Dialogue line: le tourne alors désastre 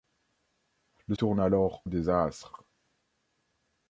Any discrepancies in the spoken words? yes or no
no